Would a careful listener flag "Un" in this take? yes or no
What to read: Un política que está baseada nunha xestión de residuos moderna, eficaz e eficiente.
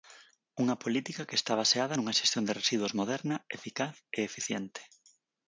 yes